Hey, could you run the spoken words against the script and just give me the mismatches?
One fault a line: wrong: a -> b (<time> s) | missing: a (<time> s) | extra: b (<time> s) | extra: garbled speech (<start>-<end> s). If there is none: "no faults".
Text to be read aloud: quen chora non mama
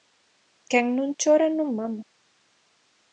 extra: non (1.0 s)